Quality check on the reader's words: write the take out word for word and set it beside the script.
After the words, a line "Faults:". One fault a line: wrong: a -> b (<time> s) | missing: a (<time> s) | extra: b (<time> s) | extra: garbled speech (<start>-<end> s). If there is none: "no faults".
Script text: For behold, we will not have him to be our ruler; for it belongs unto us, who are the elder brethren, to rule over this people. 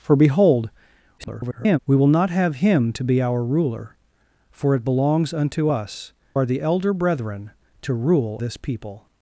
For behold, [garbled] we will not have him to be our ruler; for it belongs unto us, are the elder brethren, to rule this people.
Faults:
extra: garbled speech (1.2-1.8 s)
missing: who (6.1 s)
missing: over (8.4 s)